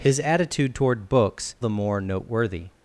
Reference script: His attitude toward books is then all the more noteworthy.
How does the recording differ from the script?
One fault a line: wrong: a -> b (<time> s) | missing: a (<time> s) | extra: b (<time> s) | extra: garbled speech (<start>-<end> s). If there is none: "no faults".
missing: is then all (1.6 s)